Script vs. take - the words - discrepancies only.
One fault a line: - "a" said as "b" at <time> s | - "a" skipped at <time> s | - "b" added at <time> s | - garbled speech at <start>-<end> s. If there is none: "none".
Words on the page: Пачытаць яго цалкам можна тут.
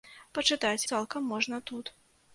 - "яго" skipped at 0.8 s